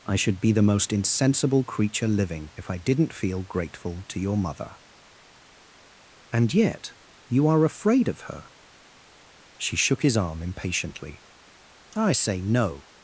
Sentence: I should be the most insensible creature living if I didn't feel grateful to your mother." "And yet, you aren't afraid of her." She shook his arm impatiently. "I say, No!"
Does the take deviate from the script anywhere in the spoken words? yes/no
yes